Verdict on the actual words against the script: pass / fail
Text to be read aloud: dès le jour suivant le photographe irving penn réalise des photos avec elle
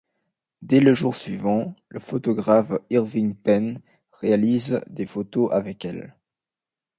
pass